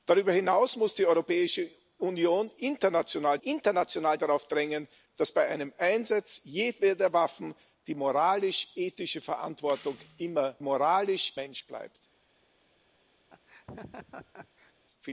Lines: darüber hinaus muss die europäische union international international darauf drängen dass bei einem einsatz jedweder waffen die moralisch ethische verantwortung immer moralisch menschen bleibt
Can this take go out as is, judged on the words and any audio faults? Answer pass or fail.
fail